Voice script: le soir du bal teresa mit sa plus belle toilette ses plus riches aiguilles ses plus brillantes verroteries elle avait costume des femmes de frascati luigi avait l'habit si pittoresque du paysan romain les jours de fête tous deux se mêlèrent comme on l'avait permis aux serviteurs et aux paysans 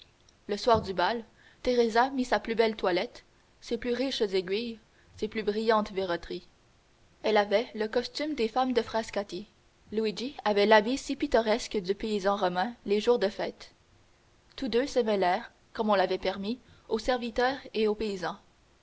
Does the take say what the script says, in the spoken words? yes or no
no